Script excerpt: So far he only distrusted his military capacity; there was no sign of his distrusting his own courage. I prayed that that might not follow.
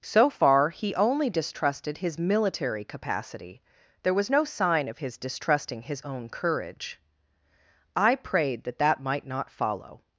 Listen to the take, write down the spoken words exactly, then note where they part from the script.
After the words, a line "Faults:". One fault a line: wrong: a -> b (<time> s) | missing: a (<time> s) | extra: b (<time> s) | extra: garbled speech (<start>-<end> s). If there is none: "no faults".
So far he only distrusted his military capacity; there was no sign of his distrusting his own courage. I prayed that that might not follow.
Faults:
no faults